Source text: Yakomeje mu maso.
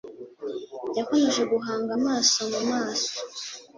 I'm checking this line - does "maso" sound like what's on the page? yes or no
yes